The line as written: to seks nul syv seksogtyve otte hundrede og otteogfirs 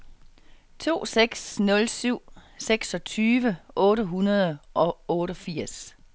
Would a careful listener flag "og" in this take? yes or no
no